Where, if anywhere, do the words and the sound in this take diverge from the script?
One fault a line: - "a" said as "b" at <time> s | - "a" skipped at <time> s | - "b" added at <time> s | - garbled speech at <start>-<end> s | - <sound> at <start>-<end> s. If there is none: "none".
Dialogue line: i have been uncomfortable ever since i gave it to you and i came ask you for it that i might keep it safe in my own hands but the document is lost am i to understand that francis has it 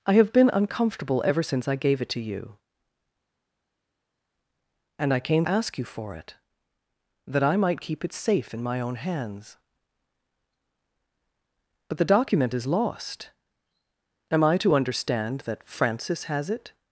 none